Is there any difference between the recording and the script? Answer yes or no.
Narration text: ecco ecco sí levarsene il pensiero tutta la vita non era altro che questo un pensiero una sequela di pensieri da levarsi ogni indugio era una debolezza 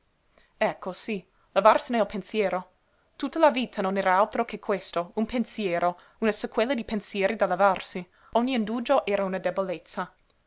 yes